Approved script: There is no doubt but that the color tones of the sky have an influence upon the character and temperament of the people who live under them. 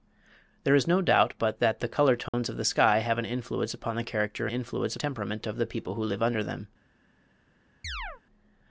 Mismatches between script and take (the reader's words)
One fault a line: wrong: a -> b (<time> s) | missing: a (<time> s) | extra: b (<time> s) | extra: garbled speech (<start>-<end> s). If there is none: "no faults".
wrong: and -> influence (4.5 s)